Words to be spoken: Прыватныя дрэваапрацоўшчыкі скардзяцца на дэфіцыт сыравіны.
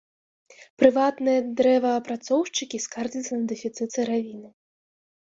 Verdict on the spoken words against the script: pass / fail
pass